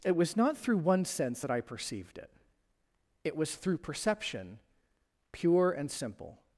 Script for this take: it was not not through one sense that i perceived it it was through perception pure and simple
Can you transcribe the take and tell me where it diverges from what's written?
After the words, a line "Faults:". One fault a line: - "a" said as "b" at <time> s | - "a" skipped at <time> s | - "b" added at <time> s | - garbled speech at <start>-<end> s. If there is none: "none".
it was not through one sense that i perceived it it was through perception pure and simple
Faults:
- "not" skipped at 0.6 s